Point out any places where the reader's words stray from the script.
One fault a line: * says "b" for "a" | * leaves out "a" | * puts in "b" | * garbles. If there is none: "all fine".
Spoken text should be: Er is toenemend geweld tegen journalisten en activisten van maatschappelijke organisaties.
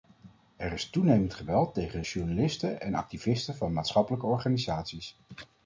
all fine